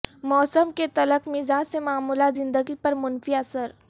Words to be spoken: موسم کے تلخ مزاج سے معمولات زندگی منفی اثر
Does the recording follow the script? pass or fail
fail